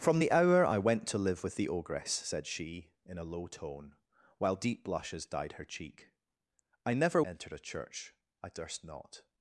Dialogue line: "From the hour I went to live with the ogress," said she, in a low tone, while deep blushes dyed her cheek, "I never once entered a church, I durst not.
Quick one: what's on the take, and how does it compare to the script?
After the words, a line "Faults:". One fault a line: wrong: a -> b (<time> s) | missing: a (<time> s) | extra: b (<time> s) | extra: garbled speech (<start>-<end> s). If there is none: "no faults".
"From the hour I went to live with the ogress," said she, in a low tone, while deep blushes dyed her cheek, "I never entered a church, I durst not.
Faults:
missing: once (7.2 s)